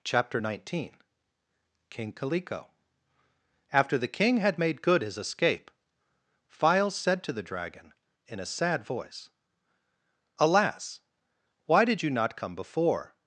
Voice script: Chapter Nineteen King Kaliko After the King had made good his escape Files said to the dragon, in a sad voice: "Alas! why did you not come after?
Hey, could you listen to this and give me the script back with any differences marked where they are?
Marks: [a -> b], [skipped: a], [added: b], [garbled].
Chapter Nineteen King Kaliko After the King had made good his escape Files said to the dragon, in a sad voice: "Alas! why did you not come [after? -> before]